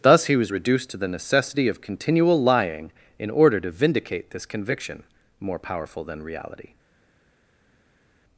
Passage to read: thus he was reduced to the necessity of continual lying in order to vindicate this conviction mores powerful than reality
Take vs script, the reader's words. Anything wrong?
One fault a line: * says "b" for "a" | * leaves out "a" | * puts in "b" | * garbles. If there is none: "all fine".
* says "more" for "mores"